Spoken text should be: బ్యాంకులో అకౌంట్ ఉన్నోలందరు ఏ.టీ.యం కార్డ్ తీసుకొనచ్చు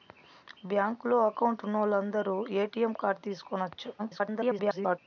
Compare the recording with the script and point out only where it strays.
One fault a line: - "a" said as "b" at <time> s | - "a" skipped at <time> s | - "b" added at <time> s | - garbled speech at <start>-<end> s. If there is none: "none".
- garbled speech at 4.0-5.0 s